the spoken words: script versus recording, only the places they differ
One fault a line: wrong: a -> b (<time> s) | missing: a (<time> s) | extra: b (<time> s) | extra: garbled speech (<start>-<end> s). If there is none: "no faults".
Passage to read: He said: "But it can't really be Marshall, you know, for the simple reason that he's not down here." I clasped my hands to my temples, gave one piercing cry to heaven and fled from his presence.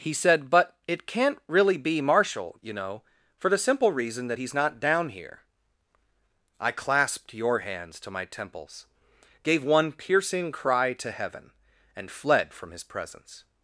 wrong: my -> your (7.3 s)